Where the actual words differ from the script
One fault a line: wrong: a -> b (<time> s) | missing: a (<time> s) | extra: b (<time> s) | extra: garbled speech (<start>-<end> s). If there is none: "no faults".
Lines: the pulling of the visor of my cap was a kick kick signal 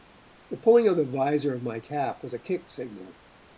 missing: kick (2.7 s)